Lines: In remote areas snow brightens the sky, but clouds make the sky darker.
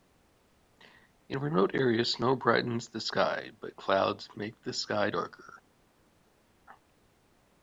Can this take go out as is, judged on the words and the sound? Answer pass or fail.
pass